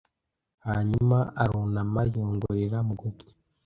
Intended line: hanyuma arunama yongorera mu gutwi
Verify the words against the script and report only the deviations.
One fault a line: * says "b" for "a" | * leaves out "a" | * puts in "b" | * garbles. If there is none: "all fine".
all fine